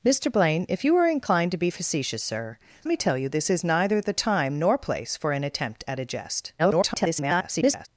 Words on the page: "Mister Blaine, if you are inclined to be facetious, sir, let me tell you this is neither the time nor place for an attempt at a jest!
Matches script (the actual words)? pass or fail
fail